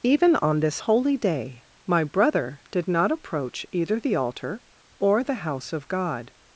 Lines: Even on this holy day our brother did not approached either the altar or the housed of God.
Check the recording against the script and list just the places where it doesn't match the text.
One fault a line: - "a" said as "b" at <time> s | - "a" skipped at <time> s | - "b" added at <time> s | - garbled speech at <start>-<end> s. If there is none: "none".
- "our" said as "my" at 1.8 s
- "approached" said as "approach" at 3.1 s
- "housed" said as "house" at 5.5 s